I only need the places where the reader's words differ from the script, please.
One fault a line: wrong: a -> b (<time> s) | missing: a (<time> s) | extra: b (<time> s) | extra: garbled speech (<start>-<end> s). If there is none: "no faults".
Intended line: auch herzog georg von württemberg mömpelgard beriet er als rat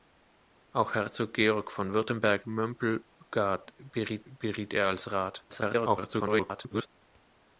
extra: beriet (4.2 s)
extra: garbled speech (5.5-6.9 s)